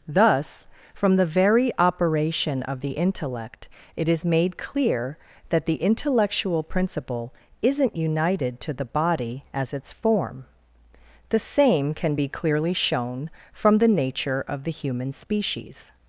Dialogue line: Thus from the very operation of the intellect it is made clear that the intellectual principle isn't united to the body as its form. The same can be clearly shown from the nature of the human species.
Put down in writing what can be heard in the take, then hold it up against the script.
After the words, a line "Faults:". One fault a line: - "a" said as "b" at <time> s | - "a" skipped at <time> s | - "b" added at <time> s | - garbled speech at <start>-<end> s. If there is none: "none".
Thus from the very operation of the intellect it is made clear that the intellectual principle isn't united to the body as its form. The same can be clearly shown from the nature of the human species.
Faults:
none